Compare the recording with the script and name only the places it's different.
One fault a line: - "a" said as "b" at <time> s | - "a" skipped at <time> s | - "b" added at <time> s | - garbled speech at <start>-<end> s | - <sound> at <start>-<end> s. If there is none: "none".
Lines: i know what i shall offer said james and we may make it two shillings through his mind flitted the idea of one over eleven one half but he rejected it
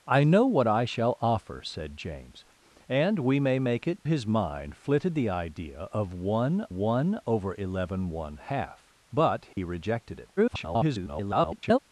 - "two shillings through" skipped at 4.1 s
- "one" added at 6.7 s
- dropout at 9.5-9.6 s
- garbled speech at 10.4-11.8 s